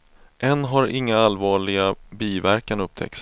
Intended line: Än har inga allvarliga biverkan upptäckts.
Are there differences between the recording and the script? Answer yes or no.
no